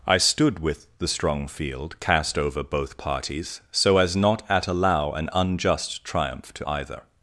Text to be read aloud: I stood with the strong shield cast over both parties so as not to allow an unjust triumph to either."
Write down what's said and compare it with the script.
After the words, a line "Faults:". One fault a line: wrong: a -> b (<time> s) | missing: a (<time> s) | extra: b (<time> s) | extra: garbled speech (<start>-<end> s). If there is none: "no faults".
I stood with the strong field cast over both parties so as not at allow an unjust triumph to either."
Faults:
wrong: shield -> field (1.5 s)
wrong: to -> at (4.5 s)